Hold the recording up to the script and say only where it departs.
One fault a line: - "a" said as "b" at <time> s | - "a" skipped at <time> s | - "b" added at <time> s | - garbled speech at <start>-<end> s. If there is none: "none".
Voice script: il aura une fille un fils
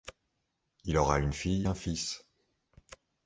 none